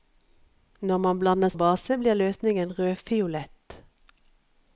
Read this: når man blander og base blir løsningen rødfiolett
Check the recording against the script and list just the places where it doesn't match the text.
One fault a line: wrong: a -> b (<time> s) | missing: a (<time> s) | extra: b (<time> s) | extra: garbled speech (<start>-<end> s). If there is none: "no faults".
no faults